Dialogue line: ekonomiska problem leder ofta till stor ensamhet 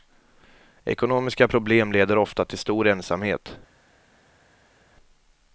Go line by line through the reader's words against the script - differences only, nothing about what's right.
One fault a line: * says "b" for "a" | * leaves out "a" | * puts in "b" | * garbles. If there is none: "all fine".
all fine